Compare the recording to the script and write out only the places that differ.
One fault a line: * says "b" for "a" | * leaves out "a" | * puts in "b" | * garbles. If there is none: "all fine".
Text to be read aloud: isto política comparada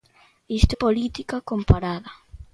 all fine